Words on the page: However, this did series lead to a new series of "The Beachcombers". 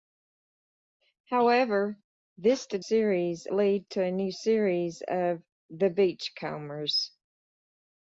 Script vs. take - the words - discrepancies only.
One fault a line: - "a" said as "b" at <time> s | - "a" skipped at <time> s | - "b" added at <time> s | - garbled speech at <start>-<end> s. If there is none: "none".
none